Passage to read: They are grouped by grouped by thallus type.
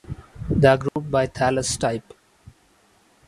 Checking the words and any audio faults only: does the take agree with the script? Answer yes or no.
no